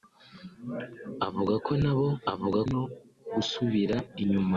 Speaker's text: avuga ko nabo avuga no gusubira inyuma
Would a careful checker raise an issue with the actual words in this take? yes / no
no